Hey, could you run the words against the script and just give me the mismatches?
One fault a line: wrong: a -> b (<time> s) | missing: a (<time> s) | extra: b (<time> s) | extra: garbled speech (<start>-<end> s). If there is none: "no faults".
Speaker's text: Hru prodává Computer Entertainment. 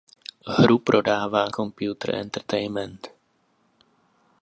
no faults